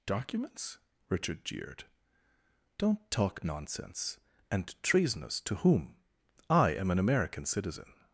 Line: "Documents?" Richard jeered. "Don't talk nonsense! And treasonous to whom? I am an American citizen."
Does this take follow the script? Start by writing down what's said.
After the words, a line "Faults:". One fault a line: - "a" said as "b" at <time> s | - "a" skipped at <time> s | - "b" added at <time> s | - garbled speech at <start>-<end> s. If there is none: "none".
"Documents?" Richard jeered. "Don't talk nonsense! And treasonous to whom? I am an American citizen."
Faults:
none